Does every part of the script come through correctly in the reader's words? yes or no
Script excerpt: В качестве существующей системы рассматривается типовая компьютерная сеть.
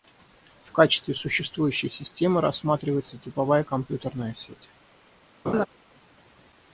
yes